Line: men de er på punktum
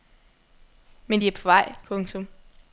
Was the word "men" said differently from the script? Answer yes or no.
no